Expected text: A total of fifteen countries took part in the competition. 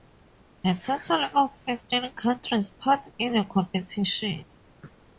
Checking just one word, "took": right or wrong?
wrong